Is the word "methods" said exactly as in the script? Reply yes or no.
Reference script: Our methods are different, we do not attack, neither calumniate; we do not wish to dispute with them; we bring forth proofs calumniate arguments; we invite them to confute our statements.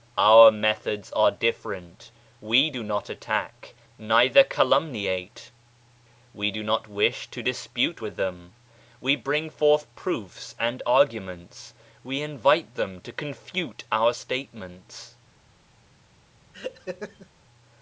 yes